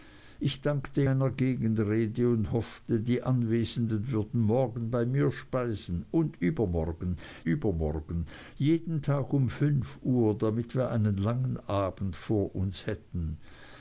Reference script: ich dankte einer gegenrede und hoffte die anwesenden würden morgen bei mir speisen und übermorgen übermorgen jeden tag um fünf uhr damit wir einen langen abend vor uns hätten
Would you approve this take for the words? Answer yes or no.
yes